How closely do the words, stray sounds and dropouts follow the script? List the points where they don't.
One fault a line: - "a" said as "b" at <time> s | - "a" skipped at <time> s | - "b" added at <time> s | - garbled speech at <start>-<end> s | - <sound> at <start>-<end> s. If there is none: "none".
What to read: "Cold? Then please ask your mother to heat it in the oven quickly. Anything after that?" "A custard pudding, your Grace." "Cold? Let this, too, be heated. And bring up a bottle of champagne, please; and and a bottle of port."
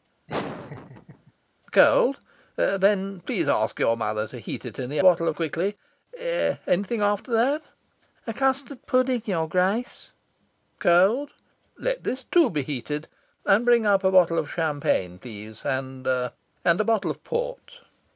- laugh at 0.3-1.3 s
- "oven" said as "bottle" at 5.0 s